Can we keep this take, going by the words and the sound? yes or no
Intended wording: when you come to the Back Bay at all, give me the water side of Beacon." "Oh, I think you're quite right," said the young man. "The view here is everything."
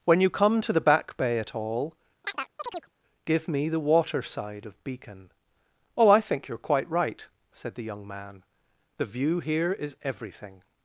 no